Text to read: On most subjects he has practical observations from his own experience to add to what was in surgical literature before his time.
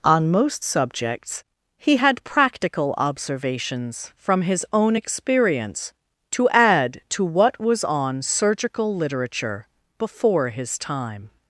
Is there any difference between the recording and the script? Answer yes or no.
yes